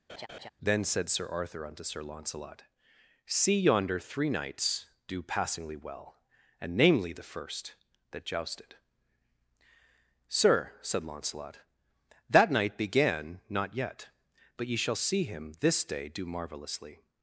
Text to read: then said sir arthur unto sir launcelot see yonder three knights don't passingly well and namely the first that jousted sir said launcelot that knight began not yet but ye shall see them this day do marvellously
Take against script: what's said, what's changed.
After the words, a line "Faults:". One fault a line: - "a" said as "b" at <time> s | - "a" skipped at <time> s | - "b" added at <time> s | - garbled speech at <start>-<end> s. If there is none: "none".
then said sir arthur unto sir launcelot see yonder three knights do passingly well and namely the first that jousted sir said launcelot that knight began not yet but ye shall see him this day do marvellously
Faults:
- "don't" said as "do" at 5.1 s
- "them" said as "him" at 15.2 s